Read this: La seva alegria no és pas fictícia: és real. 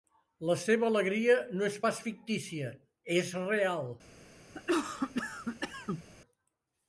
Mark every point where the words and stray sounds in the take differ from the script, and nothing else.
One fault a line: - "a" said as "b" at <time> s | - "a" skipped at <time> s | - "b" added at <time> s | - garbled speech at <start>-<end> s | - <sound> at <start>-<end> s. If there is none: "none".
- cough at 4.5-6.0 s